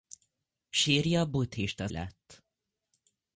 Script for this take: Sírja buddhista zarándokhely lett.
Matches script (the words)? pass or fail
fail